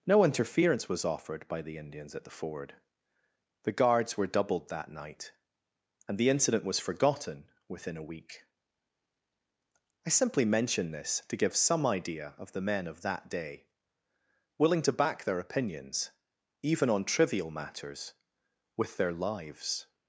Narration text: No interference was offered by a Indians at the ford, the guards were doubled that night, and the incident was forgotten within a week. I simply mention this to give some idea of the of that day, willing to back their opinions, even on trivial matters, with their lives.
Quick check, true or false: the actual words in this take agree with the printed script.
false